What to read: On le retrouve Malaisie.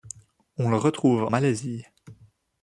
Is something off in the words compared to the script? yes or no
no